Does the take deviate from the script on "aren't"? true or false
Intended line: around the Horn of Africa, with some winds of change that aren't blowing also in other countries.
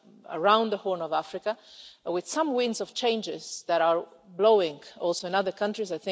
true